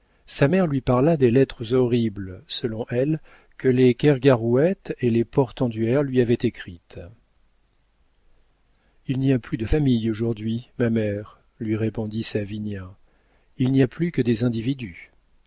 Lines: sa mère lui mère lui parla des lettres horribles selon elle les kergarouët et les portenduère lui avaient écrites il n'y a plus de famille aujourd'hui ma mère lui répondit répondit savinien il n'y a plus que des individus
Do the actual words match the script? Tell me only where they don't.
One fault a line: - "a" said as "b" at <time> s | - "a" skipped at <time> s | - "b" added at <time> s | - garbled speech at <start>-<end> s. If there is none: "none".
- "mère lui" skipped at 0.8 s
- "que" added at 3.6 s
- "répondit" skipped at 12.2 s